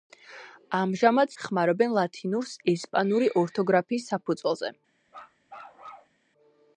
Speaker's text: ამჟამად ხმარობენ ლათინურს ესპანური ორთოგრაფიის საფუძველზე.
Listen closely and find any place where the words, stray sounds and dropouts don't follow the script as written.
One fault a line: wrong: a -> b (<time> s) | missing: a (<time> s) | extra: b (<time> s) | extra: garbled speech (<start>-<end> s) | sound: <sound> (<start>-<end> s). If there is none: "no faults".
sound: bark (5.1-6.2 s)